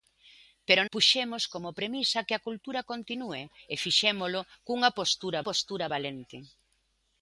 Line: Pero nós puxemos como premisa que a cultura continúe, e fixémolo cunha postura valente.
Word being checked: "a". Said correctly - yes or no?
yes